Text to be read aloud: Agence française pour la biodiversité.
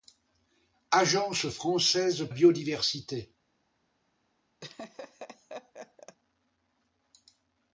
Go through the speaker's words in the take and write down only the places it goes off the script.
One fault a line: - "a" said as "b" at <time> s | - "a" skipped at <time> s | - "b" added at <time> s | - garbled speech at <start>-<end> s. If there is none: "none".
- "pour la" skipped at 2.3 s